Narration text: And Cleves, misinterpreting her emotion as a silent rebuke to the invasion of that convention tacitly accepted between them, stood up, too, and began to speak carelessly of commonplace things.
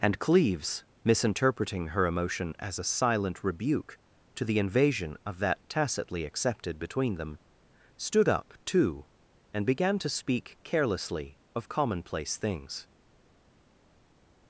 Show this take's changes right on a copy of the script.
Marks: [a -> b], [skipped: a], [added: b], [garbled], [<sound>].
And Cleves, misinterpreting her emotion as a silent rebuke to the invasion of that [skipped: convention] tacitly accepted between them, stood up, too, and began to speak carelessly of commonplace things.